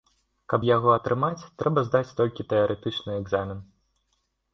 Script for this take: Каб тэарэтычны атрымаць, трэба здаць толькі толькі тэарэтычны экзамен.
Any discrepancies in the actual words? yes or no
yes